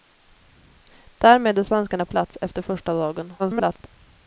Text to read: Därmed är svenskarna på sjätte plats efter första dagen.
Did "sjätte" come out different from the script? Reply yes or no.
yes